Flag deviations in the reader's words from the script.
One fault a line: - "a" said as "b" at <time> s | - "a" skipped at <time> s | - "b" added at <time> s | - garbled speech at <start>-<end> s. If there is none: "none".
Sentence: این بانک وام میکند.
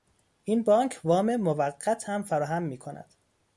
- "موقت هم فراهم" added at 1.4 s